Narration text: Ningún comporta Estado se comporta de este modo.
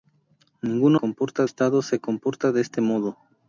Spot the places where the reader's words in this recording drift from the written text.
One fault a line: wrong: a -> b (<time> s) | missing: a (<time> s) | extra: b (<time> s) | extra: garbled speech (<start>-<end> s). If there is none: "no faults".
no faults